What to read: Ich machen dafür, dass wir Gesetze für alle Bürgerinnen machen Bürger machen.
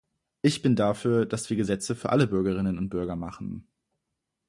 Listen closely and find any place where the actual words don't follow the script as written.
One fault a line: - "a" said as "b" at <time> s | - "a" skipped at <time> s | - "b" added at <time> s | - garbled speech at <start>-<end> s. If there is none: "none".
- "machen" said as "bin" at 0.6 s
- "machen" said as "und" at 2.8 s